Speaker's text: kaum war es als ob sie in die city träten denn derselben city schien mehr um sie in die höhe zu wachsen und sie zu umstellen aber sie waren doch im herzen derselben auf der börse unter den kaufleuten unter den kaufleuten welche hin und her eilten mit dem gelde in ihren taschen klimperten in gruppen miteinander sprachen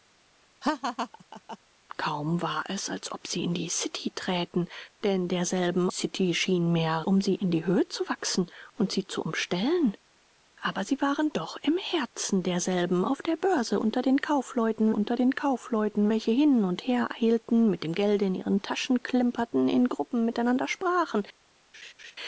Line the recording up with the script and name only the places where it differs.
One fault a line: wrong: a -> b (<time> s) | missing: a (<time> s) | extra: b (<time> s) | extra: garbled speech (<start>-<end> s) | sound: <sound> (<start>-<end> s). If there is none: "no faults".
sound: laugh (0.6-1.6 s)
sound: laugh (21.7-22.2 s)